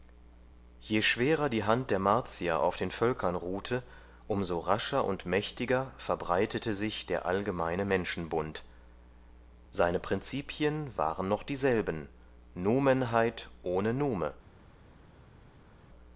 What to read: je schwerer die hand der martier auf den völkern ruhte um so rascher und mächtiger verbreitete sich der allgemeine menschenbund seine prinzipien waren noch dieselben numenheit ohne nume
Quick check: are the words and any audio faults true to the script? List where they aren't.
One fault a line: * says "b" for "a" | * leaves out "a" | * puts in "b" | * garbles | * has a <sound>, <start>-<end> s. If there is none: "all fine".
all fine